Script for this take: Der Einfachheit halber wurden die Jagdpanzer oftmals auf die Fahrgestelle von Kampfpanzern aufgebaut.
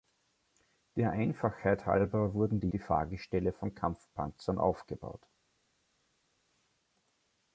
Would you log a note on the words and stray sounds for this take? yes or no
yes